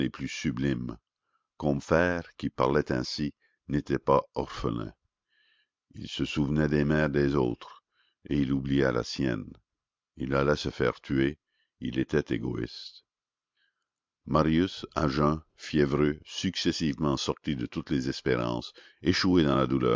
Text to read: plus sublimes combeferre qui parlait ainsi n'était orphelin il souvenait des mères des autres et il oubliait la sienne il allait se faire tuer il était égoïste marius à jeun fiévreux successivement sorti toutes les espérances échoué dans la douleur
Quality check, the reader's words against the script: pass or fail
fail